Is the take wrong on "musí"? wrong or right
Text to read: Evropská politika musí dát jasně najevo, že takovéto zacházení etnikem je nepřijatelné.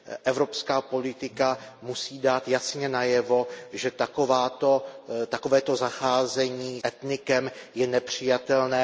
right